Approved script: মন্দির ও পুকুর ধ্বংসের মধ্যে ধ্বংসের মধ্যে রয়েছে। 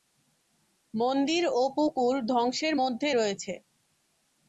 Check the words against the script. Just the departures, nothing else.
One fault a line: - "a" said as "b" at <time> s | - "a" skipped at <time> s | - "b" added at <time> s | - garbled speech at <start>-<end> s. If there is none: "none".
- "ধ্বংসের মধ্যে" skipped at 3.1 s